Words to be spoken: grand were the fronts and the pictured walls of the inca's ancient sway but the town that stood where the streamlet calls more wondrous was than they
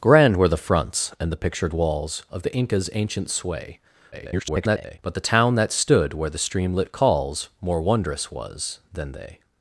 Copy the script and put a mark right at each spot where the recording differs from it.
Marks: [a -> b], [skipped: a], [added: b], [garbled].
grand were the fronts and the pictured walls of the inca's ancient sway [garbled] but the town that stood where the streamlet calls more wondrous was than they